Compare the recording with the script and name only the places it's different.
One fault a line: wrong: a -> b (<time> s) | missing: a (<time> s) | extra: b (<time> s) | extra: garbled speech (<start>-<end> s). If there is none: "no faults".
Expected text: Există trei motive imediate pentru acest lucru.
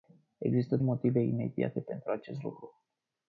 missing: trei (0.8 s)